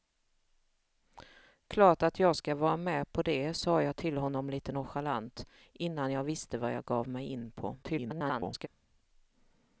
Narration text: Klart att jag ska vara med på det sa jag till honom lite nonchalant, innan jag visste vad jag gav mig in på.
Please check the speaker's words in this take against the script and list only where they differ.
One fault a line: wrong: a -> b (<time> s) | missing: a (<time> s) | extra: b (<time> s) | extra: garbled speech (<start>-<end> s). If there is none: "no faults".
extra: garbled speech (7.8-8.7 s)